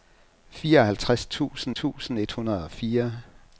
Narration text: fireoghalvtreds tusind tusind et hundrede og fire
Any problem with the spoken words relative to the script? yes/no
no